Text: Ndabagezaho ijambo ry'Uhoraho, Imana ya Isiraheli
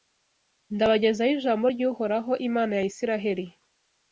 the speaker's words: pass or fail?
pass